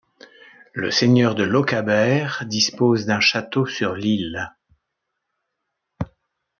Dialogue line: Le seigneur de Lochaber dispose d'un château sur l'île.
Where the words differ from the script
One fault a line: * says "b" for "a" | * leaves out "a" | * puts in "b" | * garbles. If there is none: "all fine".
all fine